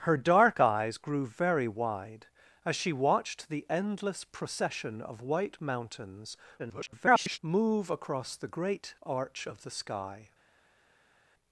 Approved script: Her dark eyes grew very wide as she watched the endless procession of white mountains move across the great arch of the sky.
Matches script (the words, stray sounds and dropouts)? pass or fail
fail